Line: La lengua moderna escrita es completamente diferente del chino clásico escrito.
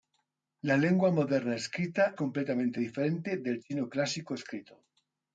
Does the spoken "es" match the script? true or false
false